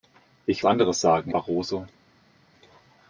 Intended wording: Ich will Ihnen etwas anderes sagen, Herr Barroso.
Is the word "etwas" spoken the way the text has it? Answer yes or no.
no